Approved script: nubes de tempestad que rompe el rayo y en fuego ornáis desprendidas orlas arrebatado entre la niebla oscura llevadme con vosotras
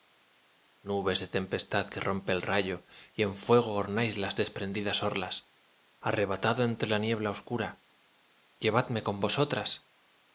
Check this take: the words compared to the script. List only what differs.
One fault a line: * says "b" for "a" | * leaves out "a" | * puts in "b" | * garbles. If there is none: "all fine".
* puts in "las"